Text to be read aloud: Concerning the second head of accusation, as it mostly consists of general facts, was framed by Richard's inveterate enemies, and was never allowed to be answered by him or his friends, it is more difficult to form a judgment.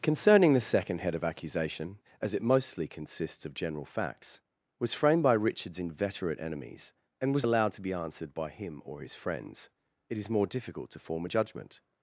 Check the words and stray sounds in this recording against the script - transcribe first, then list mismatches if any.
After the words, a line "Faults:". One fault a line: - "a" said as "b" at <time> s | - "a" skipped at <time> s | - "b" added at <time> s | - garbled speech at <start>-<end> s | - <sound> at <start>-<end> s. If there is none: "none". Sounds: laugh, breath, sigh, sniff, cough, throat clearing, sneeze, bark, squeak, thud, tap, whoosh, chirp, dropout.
Concerning the second head of accusation, as it mostly consists of general facts, was framed by Richard's inveterate enemies, and was allowed to be answered by him or his friends, it is more difficult to form a judgment.
Faults:
- "never" skipped at 7.5 s